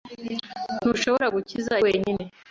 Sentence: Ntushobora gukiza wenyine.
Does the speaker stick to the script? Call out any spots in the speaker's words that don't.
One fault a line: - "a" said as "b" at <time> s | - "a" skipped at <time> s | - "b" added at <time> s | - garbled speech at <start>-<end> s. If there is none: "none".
none